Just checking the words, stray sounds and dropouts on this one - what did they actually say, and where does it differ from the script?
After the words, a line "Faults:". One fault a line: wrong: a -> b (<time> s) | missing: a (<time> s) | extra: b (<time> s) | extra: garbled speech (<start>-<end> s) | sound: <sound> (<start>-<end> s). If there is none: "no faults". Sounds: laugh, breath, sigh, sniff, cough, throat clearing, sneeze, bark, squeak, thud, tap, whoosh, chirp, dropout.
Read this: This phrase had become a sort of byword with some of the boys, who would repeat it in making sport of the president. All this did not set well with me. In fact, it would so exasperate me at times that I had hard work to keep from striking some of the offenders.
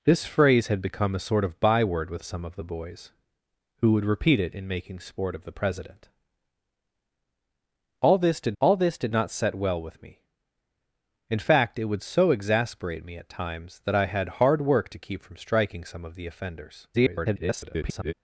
This phrase had become a sort of byword with some of the boys, who would repeat it in making sport of the president. All this did all this did not set well with me. In fact, it would so exasperate me at times that I had hard work to keep from striking some of the offenders. [garbled]
Faults:
extra: all this did (8.6 s)
extra: garbled speech (16.9-18.1 s)